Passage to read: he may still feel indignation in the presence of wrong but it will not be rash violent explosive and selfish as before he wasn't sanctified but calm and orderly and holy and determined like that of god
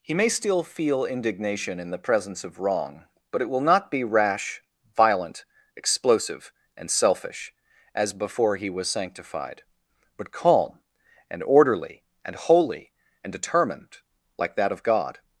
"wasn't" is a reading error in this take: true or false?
true